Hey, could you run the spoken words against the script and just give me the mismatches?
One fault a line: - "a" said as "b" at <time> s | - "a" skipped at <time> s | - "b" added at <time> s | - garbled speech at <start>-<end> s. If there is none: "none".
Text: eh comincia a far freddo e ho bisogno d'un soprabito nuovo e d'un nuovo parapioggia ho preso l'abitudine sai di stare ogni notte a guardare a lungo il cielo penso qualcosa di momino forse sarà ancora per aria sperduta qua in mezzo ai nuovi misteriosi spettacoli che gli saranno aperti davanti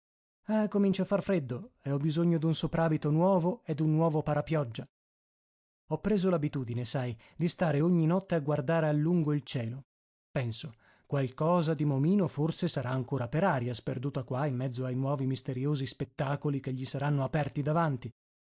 none